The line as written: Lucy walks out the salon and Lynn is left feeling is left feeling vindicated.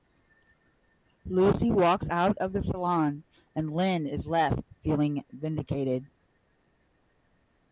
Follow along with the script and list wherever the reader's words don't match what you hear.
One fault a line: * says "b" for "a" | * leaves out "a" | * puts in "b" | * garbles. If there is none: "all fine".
* puts in "of"
* leaves out "is left feeling"